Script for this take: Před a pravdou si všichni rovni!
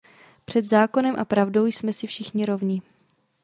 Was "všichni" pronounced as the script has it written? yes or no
yes